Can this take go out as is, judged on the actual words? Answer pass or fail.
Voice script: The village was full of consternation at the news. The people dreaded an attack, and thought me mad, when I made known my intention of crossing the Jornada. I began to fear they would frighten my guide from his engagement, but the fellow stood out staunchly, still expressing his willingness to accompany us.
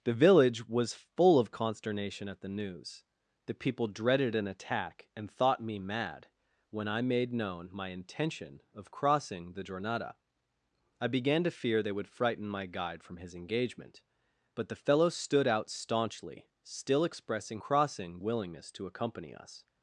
fail